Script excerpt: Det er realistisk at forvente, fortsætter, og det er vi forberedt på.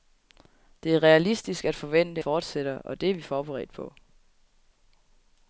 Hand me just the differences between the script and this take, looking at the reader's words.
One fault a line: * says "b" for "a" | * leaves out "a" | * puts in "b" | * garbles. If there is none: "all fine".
all fine